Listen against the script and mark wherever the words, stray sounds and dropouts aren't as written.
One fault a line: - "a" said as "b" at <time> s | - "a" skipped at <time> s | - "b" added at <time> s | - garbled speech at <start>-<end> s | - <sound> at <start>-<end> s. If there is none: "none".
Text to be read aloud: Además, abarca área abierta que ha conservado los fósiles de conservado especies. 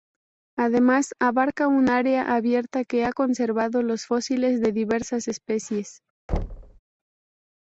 - "un" added at 1.7 s
- "conservado" said as "diversas" at 4.7 s
- thud at 6.3-6.8 s